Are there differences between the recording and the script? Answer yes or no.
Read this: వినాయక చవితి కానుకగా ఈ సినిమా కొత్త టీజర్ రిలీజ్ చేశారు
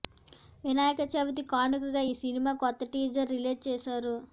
no